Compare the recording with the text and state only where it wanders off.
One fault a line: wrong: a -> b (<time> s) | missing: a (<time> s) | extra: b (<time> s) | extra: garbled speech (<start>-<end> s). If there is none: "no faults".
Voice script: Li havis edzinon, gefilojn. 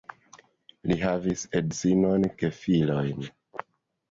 no faults